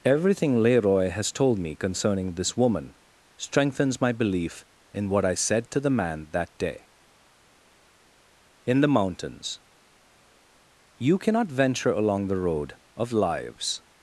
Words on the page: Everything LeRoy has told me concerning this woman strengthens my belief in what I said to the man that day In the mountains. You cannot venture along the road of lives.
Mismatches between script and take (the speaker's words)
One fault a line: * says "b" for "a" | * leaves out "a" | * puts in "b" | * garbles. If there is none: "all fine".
all fine